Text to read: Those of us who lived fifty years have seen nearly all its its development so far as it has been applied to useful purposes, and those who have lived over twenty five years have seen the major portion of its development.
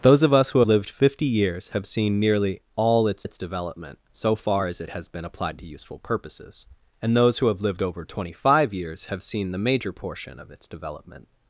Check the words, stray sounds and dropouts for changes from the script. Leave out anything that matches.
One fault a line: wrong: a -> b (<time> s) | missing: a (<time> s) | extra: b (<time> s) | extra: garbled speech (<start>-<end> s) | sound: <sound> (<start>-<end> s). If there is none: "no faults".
no faults